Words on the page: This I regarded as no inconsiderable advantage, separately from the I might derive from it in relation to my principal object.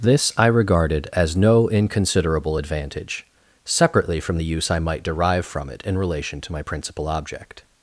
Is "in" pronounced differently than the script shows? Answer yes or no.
no